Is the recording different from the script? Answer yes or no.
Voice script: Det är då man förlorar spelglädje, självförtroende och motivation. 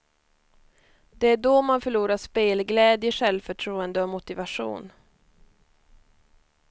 no